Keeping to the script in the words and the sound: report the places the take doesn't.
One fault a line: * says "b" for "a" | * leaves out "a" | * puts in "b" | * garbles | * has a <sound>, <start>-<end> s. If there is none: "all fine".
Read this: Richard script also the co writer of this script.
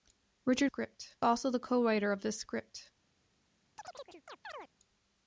* has a chirp, 3.8-4.7 s